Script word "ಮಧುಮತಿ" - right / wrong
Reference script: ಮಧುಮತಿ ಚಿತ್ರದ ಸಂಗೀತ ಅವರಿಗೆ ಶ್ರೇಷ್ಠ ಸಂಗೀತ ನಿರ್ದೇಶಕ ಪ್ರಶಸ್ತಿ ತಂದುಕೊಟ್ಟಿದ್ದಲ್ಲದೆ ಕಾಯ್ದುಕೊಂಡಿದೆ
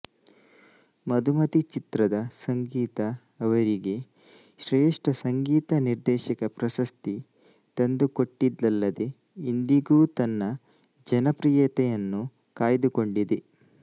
right